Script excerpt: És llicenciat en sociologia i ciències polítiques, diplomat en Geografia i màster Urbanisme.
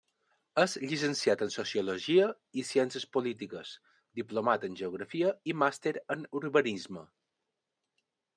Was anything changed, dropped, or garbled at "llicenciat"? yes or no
no